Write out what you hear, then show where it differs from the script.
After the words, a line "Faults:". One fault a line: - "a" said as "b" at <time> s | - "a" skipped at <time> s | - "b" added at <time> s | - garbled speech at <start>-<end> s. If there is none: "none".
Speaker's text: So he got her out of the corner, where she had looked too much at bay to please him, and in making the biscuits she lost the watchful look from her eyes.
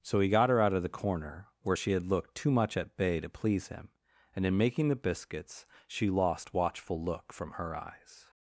So he got her out of the corner, where she had looked too much at bay to please him, and in making the biscuits she lost watchful look from her eyes.
Faults:
- "the" skipped at 6.5 s